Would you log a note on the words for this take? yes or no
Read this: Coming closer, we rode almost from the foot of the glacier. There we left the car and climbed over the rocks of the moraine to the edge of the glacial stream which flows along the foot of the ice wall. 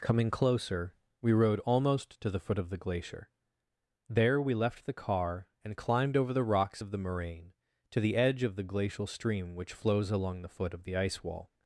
yes